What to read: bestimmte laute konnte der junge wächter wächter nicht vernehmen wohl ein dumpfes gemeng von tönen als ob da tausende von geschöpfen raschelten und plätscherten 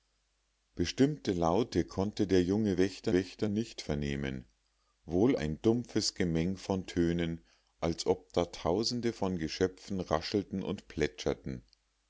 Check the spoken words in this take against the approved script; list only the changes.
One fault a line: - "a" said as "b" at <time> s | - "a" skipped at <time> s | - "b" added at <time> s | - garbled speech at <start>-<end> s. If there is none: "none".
none